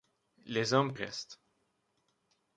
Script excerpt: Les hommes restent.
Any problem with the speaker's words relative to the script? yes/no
no